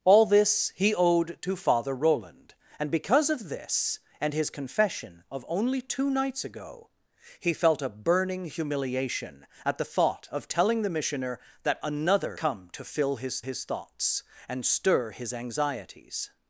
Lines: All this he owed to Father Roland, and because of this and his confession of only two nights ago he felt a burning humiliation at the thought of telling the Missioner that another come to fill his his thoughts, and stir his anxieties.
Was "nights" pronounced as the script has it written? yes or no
yes